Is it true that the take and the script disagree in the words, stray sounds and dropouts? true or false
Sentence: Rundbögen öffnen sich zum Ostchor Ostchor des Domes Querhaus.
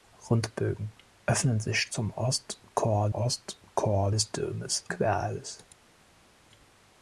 false